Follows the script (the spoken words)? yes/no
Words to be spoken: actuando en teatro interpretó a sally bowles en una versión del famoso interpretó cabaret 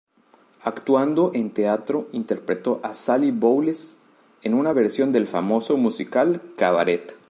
no